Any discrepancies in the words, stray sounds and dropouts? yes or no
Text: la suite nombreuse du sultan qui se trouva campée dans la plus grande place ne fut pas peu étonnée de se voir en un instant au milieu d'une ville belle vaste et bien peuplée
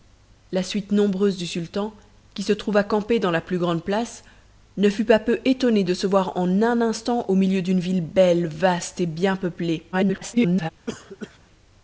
yes